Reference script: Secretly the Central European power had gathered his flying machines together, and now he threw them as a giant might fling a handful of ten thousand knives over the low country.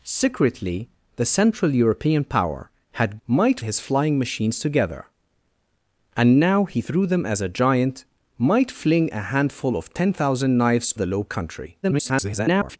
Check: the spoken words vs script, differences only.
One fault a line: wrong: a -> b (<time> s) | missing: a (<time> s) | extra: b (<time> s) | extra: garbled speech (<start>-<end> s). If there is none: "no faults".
wrong: gathered -> might (3.3 s)
missing: over (10.9 s)
extra: garbled speech (11.8-12.8 s)